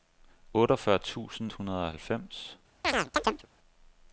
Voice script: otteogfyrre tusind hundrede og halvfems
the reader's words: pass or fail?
pass